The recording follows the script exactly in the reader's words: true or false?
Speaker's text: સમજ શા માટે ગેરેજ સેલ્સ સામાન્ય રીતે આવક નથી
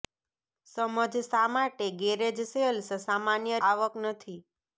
false